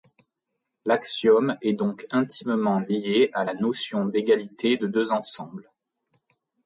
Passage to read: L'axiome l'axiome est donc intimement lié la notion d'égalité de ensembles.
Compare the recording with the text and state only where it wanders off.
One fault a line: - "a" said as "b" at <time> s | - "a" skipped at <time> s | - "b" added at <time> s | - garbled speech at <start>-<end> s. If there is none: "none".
- "l'axiome" skipped at 1.6 s
- "à" added at 3.3 s
- "deux" added at 4.9 s